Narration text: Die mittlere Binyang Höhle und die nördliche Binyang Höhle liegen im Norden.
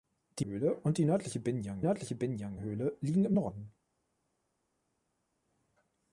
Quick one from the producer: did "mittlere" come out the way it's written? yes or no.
no